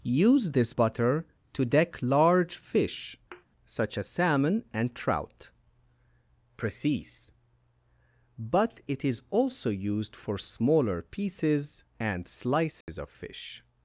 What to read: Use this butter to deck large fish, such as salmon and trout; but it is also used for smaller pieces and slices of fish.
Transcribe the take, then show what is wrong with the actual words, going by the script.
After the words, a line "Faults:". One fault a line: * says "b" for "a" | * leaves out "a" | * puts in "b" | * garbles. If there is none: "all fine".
Use this butter to deck large fish, such as salmon and trout; precise but it is also used for smaller pieces and slices of fish.
Faults:
* puts in "precise"